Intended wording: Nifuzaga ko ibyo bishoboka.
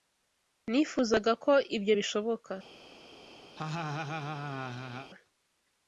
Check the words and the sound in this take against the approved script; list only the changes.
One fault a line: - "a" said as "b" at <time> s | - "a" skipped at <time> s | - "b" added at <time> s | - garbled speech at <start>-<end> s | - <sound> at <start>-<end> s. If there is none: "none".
- laugh at 3.6-5.1 s